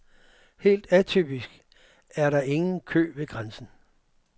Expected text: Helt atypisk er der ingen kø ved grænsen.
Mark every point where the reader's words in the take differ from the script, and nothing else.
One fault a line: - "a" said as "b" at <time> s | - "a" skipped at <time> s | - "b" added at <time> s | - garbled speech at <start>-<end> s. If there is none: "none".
none